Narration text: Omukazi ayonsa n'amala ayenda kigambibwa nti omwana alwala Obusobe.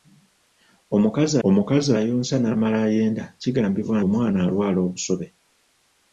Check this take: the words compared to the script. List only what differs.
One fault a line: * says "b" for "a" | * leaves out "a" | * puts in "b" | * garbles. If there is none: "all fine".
* puts in "omukazi"
* leaves out "nti"